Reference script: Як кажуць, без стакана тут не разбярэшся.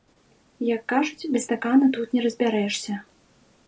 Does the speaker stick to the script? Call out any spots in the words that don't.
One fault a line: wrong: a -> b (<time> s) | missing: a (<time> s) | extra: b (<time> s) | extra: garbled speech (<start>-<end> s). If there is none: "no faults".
no faults